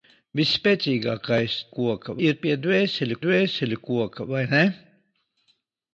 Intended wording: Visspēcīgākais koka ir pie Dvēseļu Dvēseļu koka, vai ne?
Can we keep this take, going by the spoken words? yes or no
yes